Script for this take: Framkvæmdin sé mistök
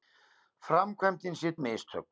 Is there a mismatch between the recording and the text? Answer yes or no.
no